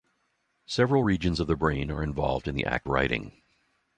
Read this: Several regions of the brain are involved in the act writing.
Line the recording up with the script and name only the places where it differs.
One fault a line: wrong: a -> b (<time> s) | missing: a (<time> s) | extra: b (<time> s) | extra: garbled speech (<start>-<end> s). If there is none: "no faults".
no faults